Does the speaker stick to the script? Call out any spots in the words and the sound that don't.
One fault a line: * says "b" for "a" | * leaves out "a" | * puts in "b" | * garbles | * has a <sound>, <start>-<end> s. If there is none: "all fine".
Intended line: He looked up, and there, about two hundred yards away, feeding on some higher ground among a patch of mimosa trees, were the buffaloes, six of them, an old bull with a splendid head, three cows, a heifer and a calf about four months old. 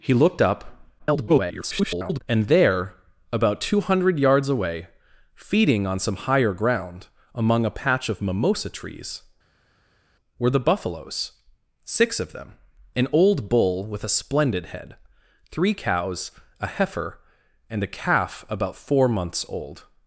* garbles